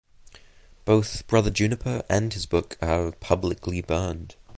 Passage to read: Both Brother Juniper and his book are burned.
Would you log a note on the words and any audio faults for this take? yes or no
yes